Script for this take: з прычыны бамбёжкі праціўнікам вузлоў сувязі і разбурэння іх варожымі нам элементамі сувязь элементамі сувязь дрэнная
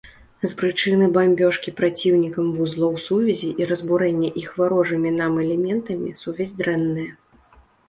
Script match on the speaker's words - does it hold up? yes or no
no